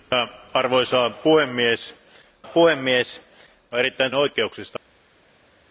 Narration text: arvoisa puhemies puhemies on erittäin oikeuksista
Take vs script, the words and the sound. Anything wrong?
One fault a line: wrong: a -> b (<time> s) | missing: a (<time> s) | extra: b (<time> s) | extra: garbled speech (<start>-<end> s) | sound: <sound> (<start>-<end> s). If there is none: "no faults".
no faults